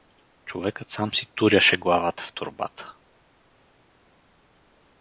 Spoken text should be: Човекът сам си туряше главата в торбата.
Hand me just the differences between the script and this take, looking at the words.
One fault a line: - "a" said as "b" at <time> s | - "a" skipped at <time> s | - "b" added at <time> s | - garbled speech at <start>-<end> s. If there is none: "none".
none